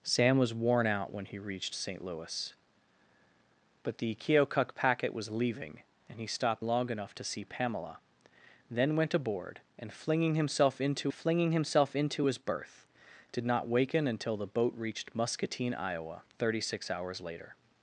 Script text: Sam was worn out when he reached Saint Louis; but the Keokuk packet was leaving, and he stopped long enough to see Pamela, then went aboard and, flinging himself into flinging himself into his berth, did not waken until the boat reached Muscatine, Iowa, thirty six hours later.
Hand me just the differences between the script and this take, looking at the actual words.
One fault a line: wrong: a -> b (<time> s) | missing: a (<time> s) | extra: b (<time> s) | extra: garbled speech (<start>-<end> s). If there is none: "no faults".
no faults